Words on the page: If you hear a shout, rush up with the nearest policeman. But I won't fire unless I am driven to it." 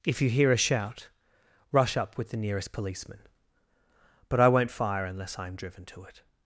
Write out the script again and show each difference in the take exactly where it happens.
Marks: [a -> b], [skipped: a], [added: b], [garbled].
If you hear a shout, rush up with the nearest policeman. But I won't fire unless I am driven to it."